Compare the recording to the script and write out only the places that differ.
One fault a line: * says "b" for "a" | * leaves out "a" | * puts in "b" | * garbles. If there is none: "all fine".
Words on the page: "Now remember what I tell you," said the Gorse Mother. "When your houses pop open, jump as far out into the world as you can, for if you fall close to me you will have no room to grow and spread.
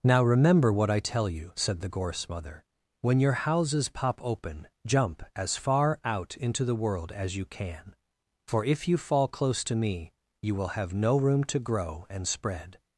all fine